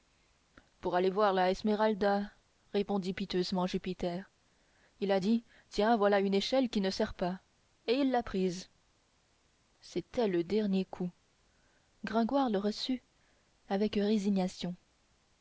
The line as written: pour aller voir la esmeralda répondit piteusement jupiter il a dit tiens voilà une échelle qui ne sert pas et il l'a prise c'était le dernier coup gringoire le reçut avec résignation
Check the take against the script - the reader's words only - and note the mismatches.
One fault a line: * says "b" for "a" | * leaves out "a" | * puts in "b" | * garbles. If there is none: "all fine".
all fine